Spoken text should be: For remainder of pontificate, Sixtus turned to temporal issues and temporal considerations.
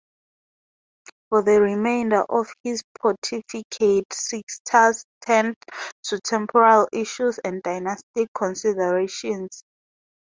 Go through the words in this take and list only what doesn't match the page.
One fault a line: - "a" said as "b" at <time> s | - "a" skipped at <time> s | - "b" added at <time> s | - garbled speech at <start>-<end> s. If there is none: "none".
- "the" added at 1.4 s
- "his" added at 2.6 s
- "temporal" said as "dynastic" at 7.6 s